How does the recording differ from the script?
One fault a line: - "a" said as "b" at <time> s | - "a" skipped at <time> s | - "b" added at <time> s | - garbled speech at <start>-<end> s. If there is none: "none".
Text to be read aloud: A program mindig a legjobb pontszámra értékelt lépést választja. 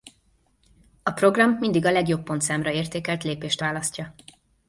none